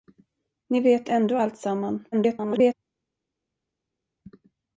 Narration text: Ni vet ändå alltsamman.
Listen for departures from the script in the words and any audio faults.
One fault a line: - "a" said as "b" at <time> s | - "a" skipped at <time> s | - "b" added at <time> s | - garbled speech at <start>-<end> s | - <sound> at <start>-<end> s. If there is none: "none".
- garbled speech at 2.1-2.7 s